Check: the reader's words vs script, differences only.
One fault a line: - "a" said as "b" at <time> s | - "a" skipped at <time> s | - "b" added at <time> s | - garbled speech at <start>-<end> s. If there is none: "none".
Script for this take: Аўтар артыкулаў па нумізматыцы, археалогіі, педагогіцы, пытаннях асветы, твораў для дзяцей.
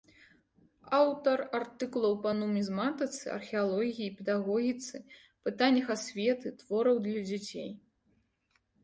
none